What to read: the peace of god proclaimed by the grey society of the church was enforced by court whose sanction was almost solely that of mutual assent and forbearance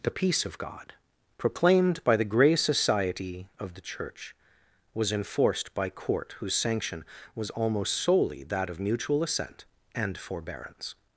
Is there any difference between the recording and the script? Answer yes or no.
no